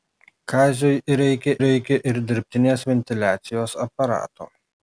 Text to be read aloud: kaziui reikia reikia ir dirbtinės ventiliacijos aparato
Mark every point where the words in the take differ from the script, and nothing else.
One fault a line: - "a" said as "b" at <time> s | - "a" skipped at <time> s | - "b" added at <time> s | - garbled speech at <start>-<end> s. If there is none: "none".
none